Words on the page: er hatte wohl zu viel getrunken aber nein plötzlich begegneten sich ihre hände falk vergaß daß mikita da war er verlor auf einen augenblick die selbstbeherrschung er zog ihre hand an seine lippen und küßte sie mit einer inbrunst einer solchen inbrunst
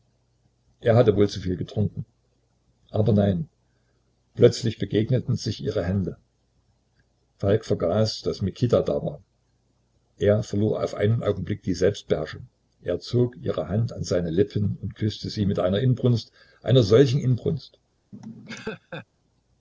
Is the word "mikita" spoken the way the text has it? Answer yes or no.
yes